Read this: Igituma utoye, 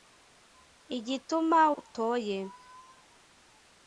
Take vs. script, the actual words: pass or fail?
pass